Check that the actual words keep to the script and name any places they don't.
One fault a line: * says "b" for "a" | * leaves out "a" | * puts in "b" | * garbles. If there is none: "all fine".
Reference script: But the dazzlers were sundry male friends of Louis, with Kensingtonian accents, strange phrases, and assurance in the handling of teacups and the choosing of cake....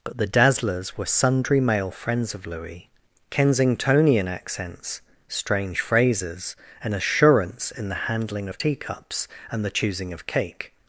* leaves out "with"